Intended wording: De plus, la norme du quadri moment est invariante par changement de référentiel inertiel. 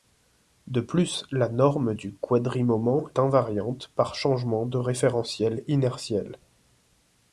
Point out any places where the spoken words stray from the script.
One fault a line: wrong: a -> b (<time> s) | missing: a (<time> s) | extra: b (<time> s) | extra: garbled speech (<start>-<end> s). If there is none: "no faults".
missing: est (3.1 s)